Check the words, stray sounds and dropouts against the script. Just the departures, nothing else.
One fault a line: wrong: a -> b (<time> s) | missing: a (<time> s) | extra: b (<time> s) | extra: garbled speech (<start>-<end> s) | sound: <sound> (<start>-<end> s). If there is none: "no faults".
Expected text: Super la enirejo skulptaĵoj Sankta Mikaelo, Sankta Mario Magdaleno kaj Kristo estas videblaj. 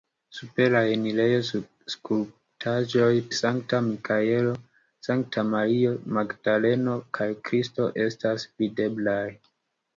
no faults